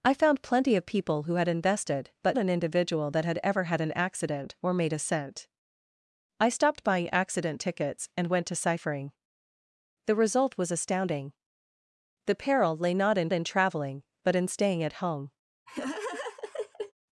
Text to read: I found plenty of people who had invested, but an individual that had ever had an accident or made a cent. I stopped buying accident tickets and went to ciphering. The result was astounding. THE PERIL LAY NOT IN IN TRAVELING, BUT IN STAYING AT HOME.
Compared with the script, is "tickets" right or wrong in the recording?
right